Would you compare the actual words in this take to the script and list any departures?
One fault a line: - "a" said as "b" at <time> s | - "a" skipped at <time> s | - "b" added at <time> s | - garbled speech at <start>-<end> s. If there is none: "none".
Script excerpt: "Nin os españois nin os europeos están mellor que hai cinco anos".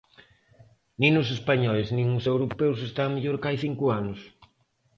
none